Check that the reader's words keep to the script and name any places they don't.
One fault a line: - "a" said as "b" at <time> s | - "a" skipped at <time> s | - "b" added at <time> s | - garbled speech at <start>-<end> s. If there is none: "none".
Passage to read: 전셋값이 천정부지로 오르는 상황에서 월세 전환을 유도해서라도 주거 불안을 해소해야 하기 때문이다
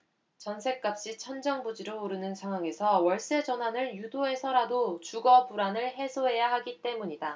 none